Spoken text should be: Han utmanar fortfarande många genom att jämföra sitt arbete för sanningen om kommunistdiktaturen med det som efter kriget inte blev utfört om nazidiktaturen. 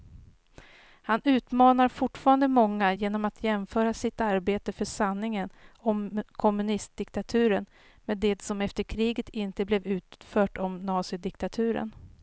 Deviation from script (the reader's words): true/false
false